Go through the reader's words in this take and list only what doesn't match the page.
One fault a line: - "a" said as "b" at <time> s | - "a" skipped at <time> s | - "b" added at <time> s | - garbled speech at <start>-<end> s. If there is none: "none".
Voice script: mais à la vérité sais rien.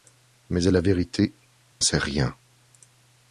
none